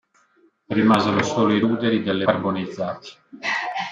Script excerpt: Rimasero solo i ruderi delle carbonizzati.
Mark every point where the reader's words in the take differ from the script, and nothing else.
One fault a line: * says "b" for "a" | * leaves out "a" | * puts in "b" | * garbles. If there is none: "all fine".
all fine